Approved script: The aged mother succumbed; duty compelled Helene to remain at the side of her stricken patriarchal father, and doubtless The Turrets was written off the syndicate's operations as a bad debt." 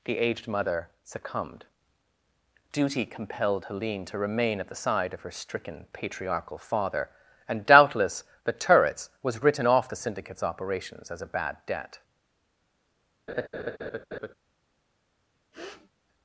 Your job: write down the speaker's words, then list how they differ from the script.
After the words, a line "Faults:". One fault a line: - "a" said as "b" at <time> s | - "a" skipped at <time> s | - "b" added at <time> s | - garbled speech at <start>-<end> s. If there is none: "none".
The aged mother succumbed; duty compelled Helene to remain at the side of her stricken patriarchal father, and doubtless The Turrets was written off the syndicate's operations as a bad debt."
Faults:
none